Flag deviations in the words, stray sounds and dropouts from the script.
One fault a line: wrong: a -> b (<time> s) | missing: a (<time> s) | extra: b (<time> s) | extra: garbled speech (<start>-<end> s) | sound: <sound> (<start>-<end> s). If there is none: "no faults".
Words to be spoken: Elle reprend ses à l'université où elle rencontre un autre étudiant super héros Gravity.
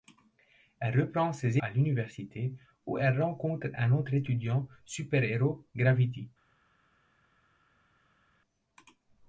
no faults